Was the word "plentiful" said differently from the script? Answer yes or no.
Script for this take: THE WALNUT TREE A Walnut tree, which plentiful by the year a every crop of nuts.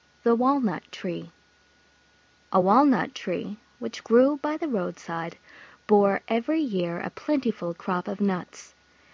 yes